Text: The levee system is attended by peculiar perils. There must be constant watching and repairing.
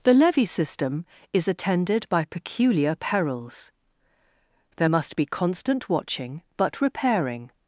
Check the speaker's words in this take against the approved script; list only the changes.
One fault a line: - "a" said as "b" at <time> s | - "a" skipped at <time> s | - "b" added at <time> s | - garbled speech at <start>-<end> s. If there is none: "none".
- "and" said as "but" at 6.6 s